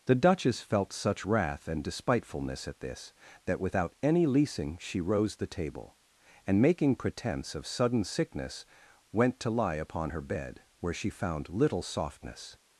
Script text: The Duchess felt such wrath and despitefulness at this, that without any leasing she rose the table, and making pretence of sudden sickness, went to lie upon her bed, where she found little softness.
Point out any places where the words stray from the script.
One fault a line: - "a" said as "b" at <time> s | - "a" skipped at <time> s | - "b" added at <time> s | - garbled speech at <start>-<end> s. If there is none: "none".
none